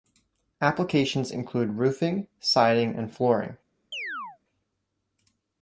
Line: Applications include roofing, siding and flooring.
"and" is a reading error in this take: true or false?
false